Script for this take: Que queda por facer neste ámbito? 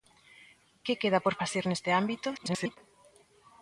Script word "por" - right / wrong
right